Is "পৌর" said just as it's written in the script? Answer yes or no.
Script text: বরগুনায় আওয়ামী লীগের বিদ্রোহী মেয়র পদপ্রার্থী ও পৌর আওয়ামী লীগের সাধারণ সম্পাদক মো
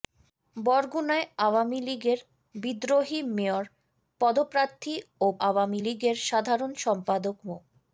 no